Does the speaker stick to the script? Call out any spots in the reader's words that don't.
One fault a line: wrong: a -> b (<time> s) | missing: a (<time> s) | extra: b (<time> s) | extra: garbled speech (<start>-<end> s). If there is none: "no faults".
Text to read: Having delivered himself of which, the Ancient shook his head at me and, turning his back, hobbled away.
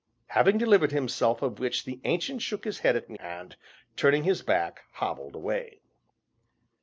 no faults